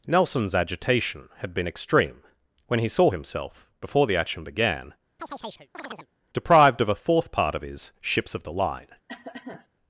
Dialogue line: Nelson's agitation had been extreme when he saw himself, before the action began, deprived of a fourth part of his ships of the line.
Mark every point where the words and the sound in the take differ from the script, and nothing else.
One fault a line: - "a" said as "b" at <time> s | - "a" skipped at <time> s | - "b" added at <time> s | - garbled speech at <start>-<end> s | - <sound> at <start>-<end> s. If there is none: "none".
- chirp at 5.2-6.1 s
- cough at 9.1-9.7 s